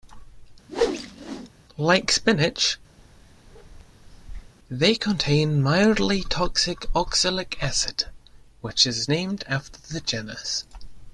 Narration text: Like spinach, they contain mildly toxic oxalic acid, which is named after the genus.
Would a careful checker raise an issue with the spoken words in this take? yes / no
no